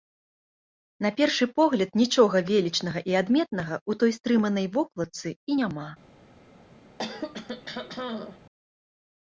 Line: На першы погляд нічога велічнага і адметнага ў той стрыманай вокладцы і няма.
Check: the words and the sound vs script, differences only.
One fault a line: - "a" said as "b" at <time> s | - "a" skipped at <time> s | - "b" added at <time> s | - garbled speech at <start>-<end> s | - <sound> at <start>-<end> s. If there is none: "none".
- throat clearing at 7.0-8.4 s